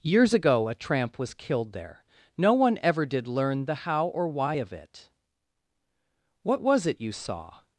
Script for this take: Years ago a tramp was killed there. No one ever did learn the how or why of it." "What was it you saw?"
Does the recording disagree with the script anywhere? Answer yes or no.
no